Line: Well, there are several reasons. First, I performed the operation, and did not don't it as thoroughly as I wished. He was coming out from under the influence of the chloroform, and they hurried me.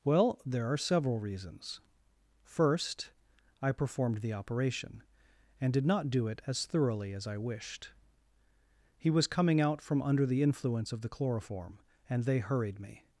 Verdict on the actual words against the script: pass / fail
fail